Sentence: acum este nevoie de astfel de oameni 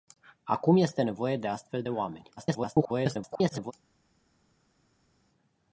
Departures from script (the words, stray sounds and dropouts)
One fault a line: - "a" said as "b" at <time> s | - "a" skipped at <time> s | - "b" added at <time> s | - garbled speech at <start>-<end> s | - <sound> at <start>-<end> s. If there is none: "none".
- garbled speech at 2.4-3.7 s